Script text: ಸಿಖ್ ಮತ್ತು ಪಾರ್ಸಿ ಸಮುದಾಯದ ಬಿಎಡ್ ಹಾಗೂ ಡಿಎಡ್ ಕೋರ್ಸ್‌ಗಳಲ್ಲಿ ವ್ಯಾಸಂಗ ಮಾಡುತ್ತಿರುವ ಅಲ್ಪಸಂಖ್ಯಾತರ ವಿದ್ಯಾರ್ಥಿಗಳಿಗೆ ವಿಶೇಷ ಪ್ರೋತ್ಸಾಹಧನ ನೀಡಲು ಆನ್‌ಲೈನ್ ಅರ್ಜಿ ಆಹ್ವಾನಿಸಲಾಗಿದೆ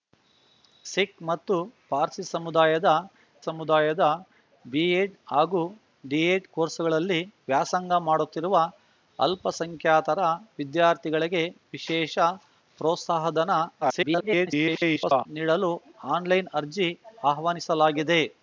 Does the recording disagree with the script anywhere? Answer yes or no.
yes